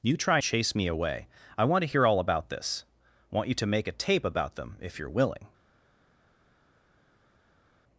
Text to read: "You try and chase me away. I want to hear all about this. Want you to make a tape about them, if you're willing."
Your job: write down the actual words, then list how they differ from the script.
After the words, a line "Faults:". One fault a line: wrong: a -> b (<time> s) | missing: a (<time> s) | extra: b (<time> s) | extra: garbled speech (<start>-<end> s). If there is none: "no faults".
"You try chase me away. I want to hear all about this. Want you to make a tape about them, if you're willing."
Faults:
missing: and (0.4 s)